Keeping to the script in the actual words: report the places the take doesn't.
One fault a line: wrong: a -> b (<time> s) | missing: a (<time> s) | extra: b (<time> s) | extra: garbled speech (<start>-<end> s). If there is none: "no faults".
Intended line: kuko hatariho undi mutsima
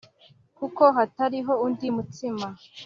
no faults